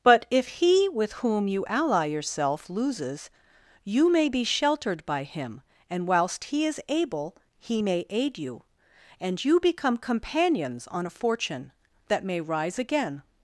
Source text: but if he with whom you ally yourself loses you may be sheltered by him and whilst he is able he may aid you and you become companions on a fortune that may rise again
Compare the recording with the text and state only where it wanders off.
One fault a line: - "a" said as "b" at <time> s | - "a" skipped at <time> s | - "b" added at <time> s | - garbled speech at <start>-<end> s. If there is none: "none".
none